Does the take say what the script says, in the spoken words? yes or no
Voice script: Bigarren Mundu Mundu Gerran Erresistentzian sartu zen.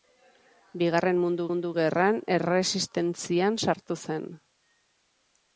yes